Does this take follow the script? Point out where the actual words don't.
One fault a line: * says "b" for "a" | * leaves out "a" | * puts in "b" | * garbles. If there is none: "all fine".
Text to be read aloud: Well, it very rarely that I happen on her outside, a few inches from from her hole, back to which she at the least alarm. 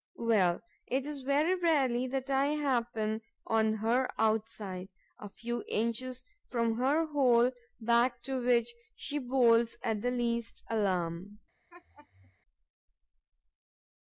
* puts in "is"
* leaves out "from"
* puts in "bolts"